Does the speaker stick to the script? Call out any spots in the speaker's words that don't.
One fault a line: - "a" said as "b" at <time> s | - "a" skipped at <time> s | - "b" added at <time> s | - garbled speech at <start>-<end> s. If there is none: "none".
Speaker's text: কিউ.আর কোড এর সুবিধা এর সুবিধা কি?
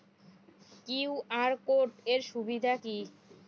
- "এর সুবিধা" skipped at 2.7 s